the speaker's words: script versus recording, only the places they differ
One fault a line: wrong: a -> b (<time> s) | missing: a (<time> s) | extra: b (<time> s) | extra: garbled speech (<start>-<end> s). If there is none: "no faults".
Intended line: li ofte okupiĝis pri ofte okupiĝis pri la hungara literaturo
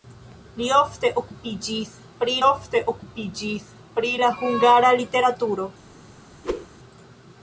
no faults